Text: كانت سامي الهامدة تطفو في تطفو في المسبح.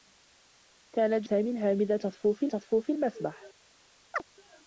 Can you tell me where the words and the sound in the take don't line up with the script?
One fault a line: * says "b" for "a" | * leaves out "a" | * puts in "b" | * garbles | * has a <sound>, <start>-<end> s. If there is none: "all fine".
* has a chirp, 4.1-4.2 s